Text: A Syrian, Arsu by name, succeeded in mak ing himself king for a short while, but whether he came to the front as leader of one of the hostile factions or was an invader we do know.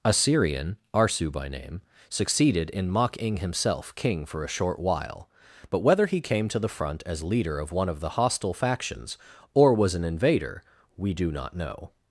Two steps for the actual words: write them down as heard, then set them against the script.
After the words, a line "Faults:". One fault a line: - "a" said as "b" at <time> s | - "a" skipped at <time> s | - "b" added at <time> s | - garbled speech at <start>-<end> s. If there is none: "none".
A Syrian, Arsu by name, succeeded in mak ing himself king for a short while, but whether he came to the front as leader of one of the hostile factions or was an invader we do not know.
Faults:
- "not" added at 11.3 s